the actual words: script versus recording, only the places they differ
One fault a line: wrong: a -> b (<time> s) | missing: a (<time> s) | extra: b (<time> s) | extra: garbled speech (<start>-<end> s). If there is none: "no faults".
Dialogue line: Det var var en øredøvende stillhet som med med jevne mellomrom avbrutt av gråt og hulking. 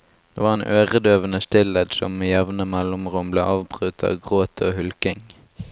missing: var (0.5 s)
missing: med (2.3 s)
extra: ble (3.3 s)